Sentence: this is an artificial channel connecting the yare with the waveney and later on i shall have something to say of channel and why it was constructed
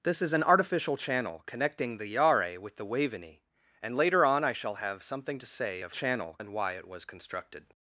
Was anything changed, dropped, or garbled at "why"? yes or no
no